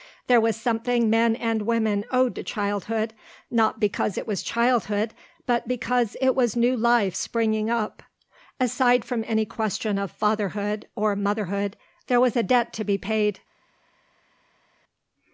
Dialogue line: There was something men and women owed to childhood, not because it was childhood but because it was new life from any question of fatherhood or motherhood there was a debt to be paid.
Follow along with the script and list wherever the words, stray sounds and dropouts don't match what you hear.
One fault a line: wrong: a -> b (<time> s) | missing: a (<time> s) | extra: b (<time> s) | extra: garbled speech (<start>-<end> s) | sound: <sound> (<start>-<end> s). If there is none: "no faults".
extra: springing up Aside (7.1 s)